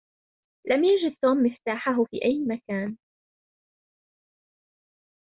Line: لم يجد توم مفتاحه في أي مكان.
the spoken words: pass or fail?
pass